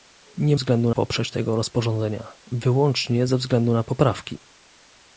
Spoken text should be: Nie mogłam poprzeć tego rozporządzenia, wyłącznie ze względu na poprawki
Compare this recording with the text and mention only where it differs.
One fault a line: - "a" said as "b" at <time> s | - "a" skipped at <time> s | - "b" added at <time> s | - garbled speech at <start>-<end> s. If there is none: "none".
- "mogłam" said as "względu" at 0.5 s